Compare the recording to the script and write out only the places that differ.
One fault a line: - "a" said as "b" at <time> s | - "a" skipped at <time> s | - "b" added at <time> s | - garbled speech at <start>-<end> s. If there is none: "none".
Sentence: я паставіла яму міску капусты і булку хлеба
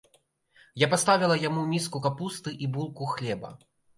none